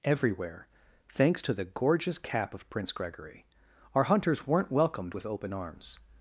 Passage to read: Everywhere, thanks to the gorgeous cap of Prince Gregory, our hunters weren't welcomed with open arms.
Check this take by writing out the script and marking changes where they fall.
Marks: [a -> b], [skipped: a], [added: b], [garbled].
Everywhere, thanks to the gorgeous cap of Prince Gregory, our hunters weren't welcomed with open arms.